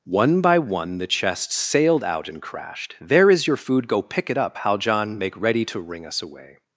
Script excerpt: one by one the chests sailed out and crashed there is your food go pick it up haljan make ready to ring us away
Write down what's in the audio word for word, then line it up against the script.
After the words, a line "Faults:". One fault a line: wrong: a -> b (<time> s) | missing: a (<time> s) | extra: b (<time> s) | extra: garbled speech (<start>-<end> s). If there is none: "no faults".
one by one the chests sailed out and crashed there is your food go pick it up haljan make ready to ring us away
Faults:
no faults